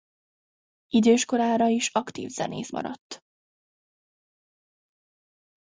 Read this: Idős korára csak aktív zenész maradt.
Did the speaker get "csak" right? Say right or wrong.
wrong